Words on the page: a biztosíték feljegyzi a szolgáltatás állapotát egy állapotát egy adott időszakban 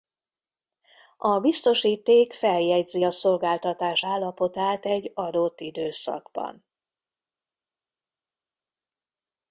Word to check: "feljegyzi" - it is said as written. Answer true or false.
true